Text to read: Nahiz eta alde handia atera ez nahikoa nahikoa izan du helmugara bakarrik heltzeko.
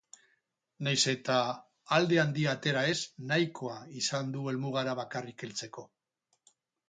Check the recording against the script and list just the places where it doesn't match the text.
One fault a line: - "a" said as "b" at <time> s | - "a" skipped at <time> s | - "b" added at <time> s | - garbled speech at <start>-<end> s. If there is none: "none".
- "nahikoa" skipped at 3.7 s